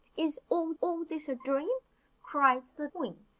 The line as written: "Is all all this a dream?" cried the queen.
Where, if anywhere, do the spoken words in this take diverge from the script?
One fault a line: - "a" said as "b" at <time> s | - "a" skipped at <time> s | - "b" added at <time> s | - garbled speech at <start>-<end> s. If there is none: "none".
none